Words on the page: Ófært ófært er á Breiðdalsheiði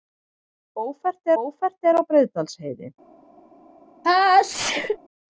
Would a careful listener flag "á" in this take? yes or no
no